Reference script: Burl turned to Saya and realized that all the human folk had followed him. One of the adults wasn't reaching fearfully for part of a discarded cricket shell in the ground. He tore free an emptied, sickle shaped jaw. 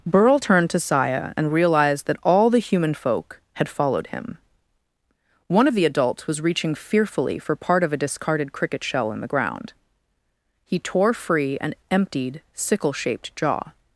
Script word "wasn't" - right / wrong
wrong